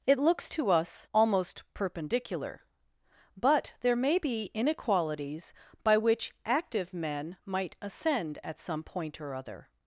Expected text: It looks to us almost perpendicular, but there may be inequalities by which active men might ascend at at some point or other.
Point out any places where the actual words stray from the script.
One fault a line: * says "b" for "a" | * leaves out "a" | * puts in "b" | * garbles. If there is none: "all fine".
* leaves out "at"